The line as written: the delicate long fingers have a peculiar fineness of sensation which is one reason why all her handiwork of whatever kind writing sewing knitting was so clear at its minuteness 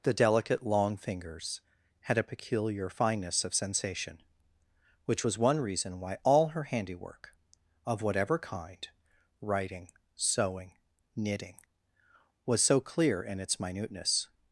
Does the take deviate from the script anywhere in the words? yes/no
yes